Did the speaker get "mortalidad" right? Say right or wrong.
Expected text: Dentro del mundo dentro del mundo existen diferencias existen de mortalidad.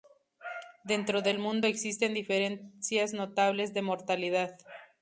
right